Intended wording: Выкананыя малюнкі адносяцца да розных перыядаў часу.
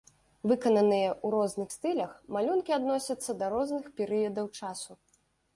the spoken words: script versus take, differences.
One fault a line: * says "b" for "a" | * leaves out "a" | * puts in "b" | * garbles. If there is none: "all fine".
* puts in "ў розных стылях"